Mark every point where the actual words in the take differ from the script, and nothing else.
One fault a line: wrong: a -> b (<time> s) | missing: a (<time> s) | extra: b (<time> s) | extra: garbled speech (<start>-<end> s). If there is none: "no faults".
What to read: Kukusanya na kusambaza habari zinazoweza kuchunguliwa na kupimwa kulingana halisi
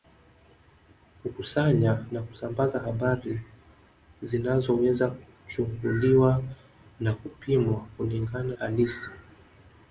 no faults